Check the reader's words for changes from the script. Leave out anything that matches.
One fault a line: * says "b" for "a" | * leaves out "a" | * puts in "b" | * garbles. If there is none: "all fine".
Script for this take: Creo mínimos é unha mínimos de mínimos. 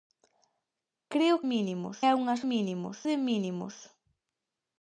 all fine